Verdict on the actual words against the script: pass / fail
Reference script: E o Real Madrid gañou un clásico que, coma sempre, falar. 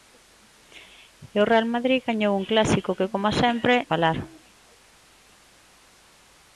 pass